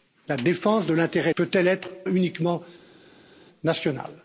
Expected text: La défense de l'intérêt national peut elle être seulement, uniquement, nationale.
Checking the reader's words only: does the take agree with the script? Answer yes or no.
no